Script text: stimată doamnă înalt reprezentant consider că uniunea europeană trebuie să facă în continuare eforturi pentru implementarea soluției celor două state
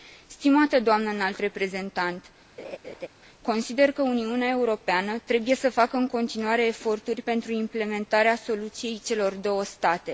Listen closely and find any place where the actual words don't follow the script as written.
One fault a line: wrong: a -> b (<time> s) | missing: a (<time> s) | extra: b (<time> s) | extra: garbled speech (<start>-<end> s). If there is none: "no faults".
no faults